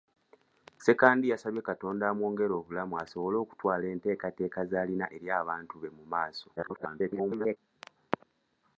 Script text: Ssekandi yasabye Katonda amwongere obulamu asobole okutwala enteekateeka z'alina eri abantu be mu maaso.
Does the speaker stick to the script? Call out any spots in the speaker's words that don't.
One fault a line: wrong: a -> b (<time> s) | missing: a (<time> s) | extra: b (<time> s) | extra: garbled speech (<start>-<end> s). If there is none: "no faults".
extra: garbled speech (6.6-7.6 s)